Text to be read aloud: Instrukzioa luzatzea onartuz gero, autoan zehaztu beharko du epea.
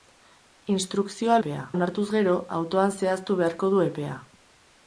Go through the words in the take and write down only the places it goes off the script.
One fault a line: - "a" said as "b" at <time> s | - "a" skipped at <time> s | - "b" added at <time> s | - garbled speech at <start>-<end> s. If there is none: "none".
- "luzatzea" said as "epea" at 1.4 s